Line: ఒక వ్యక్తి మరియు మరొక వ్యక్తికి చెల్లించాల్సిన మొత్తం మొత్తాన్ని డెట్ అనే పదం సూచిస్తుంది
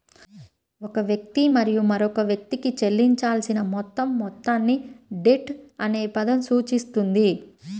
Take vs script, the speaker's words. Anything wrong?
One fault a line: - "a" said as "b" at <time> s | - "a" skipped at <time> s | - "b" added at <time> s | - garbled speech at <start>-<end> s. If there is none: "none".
none